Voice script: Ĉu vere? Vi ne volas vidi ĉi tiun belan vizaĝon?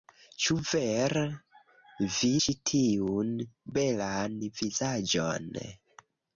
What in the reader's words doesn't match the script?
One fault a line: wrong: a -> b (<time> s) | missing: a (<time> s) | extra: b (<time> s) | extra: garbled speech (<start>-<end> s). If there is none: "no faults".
missing: ne volas vidi (2.3 s)